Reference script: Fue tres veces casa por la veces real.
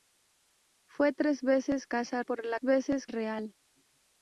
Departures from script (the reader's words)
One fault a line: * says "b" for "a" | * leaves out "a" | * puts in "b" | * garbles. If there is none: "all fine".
all fine